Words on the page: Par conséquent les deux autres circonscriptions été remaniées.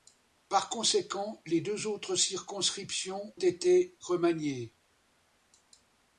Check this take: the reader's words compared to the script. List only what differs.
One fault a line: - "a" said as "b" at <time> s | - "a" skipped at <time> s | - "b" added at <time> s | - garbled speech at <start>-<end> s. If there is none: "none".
none